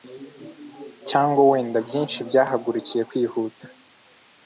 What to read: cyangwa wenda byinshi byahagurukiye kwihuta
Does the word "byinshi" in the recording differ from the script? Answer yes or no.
no